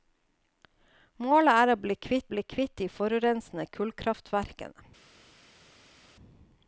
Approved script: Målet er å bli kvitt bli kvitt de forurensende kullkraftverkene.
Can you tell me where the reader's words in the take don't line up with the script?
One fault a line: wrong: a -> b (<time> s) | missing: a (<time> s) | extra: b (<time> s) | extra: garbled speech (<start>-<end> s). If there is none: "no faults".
no faults